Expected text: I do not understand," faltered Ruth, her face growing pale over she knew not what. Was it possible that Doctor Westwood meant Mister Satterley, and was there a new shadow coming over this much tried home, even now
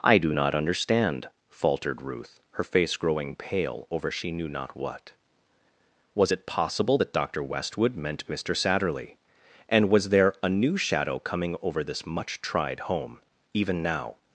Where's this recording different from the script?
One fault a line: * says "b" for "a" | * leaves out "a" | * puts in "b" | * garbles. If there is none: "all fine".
all fine